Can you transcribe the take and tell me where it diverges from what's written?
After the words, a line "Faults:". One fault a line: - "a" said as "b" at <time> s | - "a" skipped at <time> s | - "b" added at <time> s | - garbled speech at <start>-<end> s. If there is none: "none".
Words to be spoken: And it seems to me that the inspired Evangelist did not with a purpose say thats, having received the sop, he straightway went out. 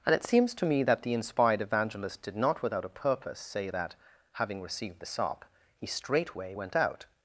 And it seems to me that the inspired Evangelist did not without a purpose say that, having received the sop, he straightway went out.
Faults:
- "with" said as "without" at 2.6 s
- "thats" said as "that" at 3.7 s